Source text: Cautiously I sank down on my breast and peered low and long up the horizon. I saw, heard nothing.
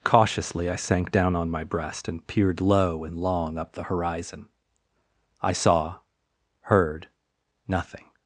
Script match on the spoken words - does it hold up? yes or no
yes